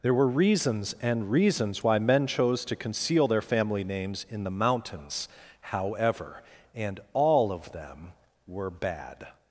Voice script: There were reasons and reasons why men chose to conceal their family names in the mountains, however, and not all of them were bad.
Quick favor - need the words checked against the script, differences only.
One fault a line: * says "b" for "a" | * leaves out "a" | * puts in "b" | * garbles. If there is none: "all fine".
* leaves out "not"